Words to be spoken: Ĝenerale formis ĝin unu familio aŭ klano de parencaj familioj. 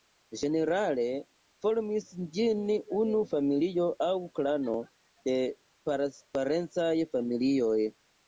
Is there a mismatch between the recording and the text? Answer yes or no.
no